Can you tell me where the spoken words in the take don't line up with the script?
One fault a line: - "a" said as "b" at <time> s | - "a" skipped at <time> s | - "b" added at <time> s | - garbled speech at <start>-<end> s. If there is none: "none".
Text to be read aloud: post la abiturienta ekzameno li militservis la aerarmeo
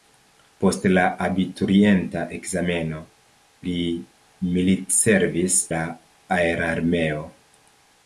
none